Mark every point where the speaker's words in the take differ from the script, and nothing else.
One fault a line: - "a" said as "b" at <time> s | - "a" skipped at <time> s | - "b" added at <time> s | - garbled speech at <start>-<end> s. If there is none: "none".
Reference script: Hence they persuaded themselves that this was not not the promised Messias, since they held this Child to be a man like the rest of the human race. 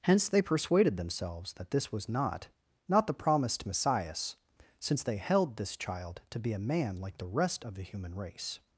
none